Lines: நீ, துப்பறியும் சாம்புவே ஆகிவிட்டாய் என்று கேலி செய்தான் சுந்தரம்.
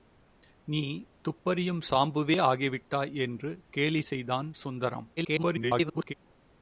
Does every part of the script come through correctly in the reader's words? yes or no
no